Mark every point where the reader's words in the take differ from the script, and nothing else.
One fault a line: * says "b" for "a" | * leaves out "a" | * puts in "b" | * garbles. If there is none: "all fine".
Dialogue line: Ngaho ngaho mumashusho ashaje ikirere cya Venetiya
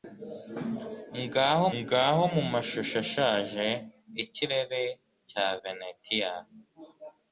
all fine